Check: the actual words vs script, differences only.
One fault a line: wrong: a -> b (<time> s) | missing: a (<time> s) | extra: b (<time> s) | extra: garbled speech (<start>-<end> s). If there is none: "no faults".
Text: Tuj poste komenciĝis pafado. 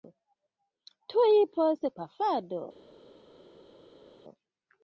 missing: komenciĝis (1.9 s)